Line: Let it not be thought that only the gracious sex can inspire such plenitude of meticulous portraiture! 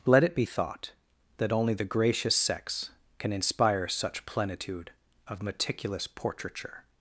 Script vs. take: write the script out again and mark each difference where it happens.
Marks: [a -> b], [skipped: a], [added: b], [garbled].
Let it [skipped: not] be thought that only the gracious sex can inspire such plenitude of meticulous portraiture!